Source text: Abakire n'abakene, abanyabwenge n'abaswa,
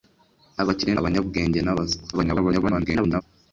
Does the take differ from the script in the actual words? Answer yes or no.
yes